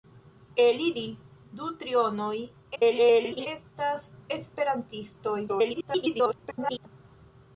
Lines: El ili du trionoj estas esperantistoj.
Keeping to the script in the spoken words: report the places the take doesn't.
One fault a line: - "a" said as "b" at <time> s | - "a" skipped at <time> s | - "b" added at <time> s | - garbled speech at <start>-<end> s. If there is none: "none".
- garbled speech at 2.7-3.5 s
- garbled speech at 5.5-6.9 s